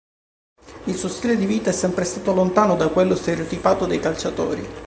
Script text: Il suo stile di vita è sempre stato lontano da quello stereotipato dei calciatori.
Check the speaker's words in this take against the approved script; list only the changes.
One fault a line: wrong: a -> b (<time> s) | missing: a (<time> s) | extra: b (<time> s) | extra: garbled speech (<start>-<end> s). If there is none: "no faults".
no faults